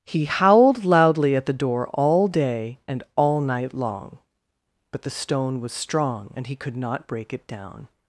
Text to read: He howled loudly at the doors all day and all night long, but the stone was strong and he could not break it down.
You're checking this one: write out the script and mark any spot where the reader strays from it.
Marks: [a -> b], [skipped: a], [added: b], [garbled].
He howled loudly at the [doors -> door] all day and all night long, but the stone was strong and he could not break it down.